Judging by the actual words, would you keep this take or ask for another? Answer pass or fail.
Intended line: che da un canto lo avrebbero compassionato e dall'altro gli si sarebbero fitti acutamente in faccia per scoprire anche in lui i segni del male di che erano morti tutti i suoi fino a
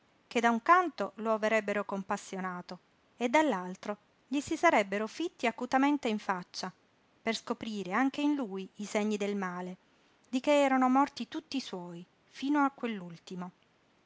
pass